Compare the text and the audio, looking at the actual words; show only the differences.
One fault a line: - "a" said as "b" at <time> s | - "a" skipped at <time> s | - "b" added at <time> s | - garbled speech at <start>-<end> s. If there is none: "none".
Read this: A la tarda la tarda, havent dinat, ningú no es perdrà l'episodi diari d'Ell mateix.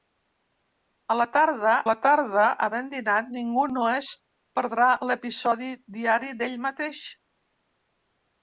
none